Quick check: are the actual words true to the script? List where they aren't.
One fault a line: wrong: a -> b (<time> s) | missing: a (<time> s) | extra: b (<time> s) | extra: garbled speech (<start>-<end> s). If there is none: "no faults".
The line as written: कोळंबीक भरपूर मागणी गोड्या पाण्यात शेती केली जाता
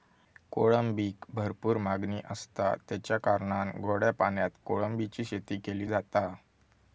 extra: आसता तेच्या कारणान (2.2 s)
extra: कोळंबीची (4.7 s)